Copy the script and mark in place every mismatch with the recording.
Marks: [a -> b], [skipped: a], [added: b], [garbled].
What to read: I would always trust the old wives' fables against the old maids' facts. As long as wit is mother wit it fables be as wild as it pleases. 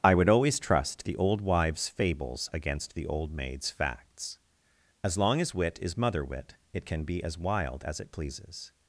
I would always trust the old wives' fables against the old maids' facts. As long as wit is mother wit it [fables -> can] be as wild as it pleases.